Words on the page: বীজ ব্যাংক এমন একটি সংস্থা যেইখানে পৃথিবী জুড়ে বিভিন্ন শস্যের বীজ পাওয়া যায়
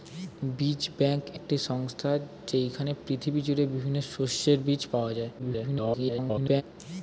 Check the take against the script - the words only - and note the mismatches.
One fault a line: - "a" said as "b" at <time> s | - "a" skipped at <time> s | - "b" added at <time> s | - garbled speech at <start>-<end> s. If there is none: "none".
- "এমন" skipped at 1.2 s
- garbled speech at 5.4-6.6 s